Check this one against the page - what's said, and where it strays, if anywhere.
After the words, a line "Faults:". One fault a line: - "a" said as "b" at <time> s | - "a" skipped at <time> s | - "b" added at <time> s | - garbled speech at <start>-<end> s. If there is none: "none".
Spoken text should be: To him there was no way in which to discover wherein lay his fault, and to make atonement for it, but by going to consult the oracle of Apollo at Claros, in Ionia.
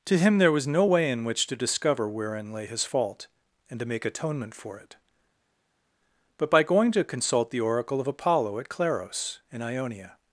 To him there was no way in which to discover wherein lay his fault, and to make atonement for it, but by going to consult the oracle of Apollo at Claros, in Ionia.
Faults:
none